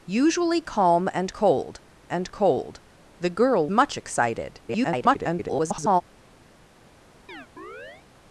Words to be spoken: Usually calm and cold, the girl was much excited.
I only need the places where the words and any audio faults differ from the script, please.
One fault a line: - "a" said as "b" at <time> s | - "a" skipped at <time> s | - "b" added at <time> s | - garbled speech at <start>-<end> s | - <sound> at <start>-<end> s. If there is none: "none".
- "and cold" added at 2.1 s
- "was" skipped at 3.7 s
- garbled speech at 4.7-6.0 s
- chirp at 7.3-8.1 s